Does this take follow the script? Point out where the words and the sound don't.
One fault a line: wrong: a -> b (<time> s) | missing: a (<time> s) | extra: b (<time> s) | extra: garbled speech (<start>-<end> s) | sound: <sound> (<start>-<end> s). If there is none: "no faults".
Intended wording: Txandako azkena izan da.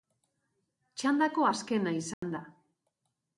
sound: dropout (2.1-2.2 s)